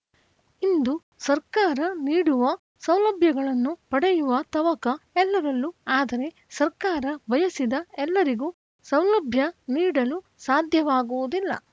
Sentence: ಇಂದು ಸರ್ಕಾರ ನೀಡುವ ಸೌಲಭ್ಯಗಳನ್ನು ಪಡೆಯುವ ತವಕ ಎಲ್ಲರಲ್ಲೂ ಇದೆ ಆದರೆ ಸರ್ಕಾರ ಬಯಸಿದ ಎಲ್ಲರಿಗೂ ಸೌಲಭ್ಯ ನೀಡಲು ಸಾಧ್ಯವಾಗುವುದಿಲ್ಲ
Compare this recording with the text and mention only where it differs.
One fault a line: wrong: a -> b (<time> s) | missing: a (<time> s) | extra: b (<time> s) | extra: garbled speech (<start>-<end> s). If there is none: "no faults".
missing: ಇದೆ (5.7 s)